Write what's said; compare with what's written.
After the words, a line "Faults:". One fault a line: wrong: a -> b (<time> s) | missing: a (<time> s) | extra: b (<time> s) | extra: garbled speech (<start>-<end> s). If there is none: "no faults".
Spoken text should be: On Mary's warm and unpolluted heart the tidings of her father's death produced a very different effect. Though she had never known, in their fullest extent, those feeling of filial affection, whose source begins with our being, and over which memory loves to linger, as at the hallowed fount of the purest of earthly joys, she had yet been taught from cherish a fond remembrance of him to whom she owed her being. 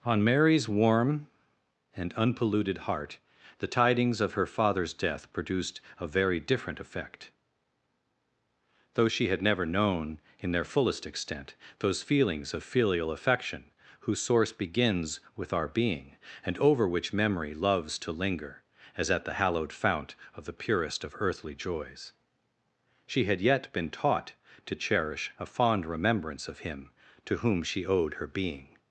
On Mary's warm and unpolluted heart the tidings of her father's death produced a very different effect. Though she had never known, in their fullest extent, those feelings of filial affection, whose source begins with our being, and over which memory loves to linger, as at the hallowed fount of the purest of earthly joys, she had yet been taught to cherish a fond remembrance of him to whom she owed her being.
Faults:
wrong: feeling -> feelings (12.0 s)
wrong: from -> to (24.6 s)